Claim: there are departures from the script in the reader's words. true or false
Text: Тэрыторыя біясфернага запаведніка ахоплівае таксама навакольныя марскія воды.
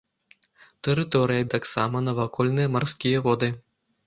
true